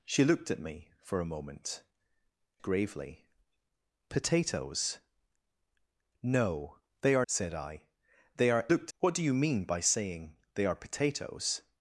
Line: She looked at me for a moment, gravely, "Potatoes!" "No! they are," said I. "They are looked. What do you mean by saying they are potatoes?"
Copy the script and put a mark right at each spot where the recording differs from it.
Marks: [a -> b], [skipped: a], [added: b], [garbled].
She looked at me for a moment, gravely, "Potatoes!" "No! they are," said I. "They are looked. What do you mean by saying they are potatoes?"